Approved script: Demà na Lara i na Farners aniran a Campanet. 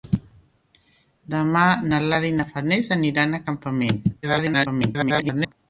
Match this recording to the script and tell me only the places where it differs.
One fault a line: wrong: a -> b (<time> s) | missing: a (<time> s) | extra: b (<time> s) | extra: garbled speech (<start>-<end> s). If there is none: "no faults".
extra: garbled speech (4.2-5.5 s)